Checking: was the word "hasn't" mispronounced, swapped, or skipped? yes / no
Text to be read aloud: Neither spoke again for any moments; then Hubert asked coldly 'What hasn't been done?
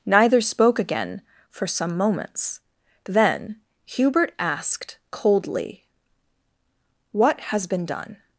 yes